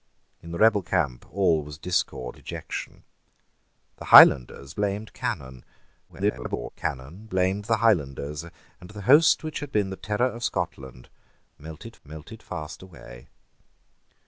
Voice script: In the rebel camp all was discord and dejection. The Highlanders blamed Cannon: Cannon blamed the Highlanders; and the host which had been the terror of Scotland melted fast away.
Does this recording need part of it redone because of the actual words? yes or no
yes